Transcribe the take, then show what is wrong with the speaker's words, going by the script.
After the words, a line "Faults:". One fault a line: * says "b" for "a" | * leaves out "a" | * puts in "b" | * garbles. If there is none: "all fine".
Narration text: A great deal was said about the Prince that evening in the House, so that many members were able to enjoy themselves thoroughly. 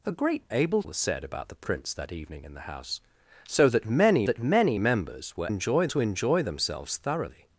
A great able was said about the Prince that evening in the House, so that many that many members were enjoy to enjoy themselves thoroughly.
Faults:
* says "able" for "deal"
* puts in "that many"
* says "enjoy" for "able"